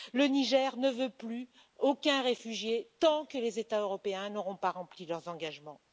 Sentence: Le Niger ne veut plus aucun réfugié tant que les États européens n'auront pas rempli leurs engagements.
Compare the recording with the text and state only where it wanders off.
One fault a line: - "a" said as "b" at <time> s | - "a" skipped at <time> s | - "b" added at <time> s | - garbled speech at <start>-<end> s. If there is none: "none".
none